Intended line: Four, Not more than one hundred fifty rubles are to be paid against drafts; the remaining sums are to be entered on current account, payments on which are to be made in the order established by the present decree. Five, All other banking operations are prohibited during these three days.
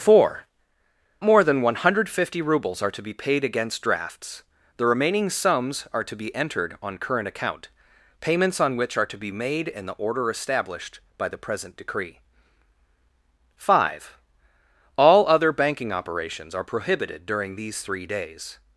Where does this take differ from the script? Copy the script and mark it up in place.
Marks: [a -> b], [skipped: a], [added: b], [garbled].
Four, [skipped: Not] more than one hundred fifty rubles are to be paid against drafts; the remaining sums are to be entered on current account, payments on which are to be made in the order established by the present decree. Five, All other banking operations are prohibited during these three days.